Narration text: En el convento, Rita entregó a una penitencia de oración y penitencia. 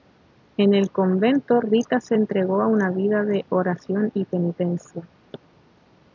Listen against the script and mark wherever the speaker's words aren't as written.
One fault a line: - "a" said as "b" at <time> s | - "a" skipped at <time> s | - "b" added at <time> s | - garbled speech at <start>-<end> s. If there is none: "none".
- "se" added at 2.0 s
- "penitencia" said as "vida" at 2.9 s